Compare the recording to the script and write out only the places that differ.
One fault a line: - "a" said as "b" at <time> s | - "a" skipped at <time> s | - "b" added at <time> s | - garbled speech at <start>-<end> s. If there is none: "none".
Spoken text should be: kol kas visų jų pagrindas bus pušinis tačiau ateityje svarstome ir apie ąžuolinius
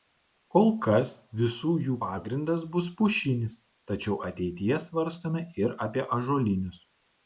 none